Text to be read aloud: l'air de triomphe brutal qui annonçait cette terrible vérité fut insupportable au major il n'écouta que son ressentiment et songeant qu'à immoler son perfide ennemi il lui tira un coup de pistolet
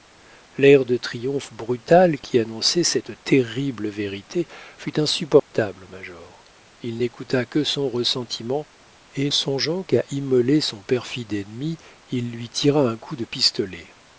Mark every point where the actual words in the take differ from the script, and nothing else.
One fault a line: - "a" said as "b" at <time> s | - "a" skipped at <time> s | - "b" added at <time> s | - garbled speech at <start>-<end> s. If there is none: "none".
none